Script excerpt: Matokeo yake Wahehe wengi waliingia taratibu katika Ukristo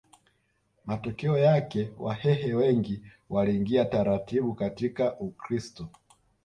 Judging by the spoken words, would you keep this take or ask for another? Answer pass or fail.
pass